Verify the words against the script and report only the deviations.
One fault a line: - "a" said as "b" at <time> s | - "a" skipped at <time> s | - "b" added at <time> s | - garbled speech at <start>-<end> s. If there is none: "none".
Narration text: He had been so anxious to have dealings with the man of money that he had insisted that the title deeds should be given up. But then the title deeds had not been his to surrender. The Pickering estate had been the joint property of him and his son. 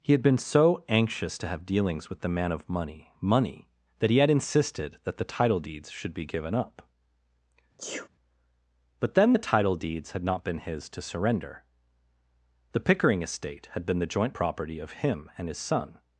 - "money" added at 3.2 s